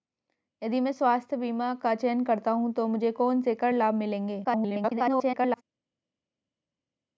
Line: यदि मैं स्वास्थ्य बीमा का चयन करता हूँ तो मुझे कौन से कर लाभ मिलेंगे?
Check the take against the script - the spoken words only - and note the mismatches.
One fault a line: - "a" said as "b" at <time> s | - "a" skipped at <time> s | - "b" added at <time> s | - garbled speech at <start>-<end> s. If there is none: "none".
- garbled speech at 4.4-5.6 s